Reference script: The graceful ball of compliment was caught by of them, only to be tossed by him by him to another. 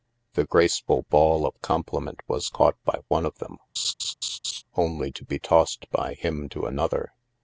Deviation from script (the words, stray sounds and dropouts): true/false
true